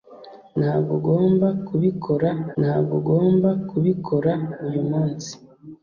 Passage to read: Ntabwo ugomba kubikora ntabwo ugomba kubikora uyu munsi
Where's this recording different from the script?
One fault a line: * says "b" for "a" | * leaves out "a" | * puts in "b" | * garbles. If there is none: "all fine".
all fine